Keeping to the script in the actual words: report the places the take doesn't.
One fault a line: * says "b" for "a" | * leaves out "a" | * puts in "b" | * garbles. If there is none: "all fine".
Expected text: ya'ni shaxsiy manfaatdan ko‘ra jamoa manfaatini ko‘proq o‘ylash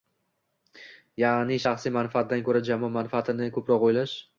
all fine